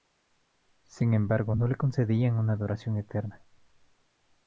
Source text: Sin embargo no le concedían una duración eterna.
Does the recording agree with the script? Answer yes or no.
yes